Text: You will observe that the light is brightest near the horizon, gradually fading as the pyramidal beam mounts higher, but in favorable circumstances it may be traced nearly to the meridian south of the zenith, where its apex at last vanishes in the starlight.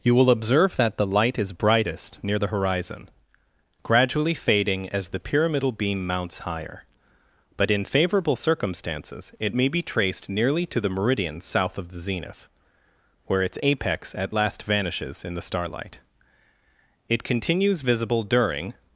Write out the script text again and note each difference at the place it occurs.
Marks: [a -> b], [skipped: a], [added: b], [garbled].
You will observe that the light is brightest near the horizon, gradually fading as the pyramidal beam mounts higher, but in favorable circumstances it may be traced nearly to the meridian south of the zenith, where its apex at last vanishes in the starlight. [added: It continues visible during]